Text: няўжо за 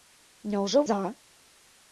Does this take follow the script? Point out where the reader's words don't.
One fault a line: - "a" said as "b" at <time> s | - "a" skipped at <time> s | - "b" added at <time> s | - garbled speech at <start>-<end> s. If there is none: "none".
none